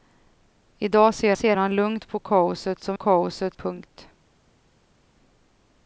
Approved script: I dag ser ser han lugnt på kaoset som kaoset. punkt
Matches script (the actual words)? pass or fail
pass